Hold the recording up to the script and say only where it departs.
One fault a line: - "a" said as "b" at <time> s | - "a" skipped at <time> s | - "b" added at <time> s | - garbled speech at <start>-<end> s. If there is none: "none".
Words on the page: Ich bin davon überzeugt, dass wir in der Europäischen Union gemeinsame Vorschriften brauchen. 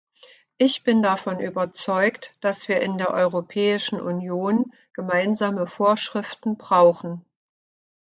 none